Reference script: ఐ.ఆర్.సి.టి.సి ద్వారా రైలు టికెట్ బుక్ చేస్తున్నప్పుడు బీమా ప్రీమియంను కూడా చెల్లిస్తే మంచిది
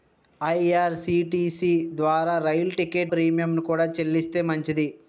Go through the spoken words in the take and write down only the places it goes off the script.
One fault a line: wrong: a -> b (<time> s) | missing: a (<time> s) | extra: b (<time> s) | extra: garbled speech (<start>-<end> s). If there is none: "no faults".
missing: బుక్ చేస్తున్నప్పుడు బీమా (3.1 s)